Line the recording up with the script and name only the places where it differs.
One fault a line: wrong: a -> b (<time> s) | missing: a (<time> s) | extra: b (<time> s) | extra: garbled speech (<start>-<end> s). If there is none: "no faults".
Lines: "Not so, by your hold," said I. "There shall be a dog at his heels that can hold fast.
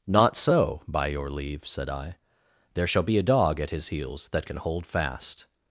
wrong: hold -> leave (1.3 s)